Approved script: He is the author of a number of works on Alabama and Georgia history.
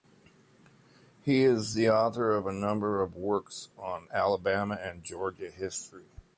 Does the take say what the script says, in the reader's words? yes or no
yes